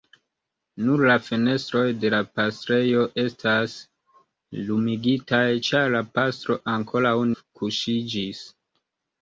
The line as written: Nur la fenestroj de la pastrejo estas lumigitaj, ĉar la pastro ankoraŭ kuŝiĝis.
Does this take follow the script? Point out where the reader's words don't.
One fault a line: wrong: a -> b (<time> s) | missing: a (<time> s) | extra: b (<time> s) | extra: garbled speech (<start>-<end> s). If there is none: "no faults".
no faults